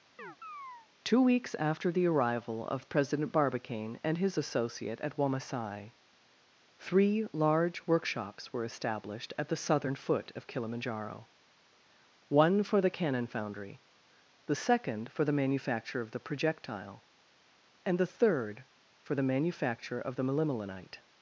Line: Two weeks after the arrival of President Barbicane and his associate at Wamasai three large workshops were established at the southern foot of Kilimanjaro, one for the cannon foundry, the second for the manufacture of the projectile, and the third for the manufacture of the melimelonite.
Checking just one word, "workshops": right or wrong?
right